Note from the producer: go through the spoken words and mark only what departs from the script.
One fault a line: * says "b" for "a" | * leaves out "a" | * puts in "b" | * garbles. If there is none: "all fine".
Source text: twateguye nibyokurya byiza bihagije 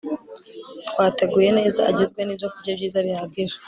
* puts in "neza agizwe"